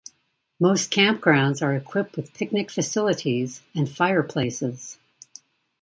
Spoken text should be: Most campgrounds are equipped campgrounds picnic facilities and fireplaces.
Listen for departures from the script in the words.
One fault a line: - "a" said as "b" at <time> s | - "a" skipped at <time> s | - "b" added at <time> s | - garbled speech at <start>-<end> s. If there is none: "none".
- "campgrounds" said as "with" at 2.1 s